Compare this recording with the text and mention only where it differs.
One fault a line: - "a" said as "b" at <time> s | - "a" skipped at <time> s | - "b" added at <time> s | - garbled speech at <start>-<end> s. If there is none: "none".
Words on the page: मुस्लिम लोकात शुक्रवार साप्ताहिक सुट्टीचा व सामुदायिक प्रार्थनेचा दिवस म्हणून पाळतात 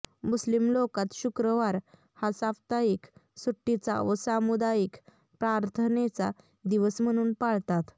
- "हा" added at 2.2 s